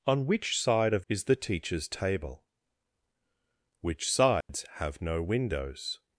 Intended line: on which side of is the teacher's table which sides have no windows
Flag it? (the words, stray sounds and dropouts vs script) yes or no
yes